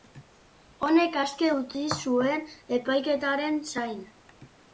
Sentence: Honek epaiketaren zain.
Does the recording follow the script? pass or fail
fail